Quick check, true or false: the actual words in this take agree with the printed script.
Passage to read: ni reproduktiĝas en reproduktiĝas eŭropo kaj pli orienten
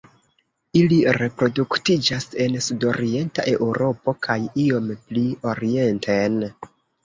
false